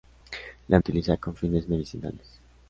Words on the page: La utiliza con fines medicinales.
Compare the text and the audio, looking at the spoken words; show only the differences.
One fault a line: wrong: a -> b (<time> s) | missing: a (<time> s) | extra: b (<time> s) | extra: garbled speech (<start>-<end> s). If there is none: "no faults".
no faults